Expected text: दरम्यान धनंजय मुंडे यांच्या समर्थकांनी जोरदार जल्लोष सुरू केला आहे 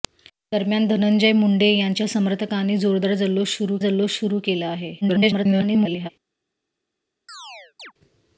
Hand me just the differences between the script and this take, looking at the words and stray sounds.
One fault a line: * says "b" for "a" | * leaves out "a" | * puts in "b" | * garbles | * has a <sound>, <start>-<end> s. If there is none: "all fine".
* puts in "जल्लोष सुरू"
* garbles
* has a chirp, 7.3-7.9 s